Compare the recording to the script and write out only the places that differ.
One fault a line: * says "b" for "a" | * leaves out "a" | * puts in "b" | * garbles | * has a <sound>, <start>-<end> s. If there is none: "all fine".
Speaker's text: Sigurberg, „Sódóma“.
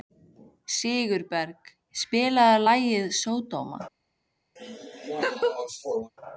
* puts in "spilaðu lagið"
* has a laugh, 4.6-6.1 s